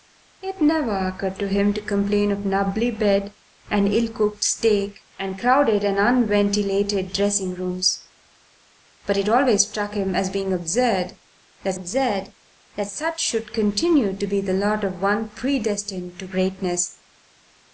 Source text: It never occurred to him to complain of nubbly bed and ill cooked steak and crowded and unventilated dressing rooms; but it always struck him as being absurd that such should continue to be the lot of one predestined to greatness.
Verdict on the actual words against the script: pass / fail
fail